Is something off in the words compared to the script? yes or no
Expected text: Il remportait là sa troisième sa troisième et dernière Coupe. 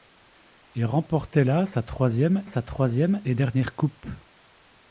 no